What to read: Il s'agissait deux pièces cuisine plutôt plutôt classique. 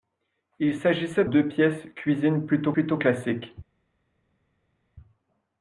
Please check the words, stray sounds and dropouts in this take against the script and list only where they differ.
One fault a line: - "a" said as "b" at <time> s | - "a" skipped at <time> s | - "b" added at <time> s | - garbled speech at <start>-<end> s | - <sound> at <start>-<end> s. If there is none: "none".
none